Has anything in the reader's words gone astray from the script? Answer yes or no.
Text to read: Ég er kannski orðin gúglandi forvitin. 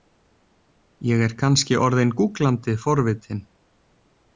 no